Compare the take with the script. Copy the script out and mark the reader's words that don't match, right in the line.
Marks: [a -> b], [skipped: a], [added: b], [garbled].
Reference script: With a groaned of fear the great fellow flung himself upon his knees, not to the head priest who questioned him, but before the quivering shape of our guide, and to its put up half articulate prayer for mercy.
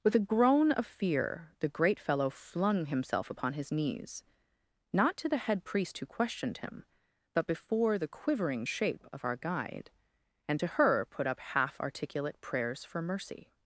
With a [groaned -> groan] of fear the great fellow flung himself upon his knees, not to the head priest who questioned him, but before the quivering shape of our guide, and to [its -> her] put up half articulate [prayer -> prayers] for mercy.